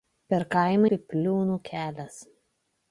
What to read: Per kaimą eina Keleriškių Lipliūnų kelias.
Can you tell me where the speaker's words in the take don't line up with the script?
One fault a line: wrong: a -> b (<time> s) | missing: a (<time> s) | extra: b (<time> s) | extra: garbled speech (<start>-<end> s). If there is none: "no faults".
missing: eina Keleriškių (0.9 s)